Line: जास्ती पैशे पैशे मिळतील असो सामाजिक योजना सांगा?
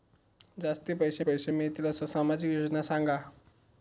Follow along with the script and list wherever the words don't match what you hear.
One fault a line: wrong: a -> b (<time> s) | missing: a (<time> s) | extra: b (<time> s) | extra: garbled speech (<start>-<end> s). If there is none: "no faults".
no faults